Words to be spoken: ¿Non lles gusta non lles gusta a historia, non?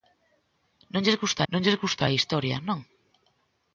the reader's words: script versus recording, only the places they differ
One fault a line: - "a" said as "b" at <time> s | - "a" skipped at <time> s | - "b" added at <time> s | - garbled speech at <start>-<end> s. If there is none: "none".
none